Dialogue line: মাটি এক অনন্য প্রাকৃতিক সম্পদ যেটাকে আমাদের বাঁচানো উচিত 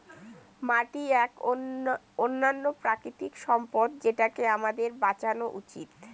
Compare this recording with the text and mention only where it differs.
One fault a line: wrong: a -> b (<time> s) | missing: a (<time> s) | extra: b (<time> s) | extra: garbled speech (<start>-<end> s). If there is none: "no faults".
no faults